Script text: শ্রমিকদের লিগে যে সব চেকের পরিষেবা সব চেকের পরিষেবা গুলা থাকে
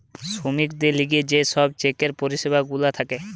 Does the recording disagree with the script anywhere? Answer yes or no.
yes